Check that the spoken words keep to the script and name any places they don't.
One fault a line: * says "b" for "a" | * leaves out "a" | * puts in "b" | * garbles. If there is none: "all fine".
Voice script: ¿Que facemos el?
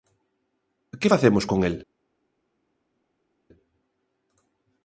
* puts in "con"